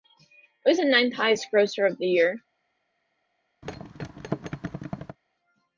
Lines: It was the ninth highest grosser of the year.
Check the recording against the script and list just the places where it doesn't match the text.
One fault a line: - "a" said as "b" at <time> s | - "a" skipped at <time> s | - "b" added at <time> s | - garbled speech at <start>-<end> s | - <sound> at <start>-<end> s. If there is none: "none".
- thud at 3.6-5.2 s